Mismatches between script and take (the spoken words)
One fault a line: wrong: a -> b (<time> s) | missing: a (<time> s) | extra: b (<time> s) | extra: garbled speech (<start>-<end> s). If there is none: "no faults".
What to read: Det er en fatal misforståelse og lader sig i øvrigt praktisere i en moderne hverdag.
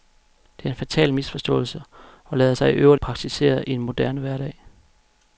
no faults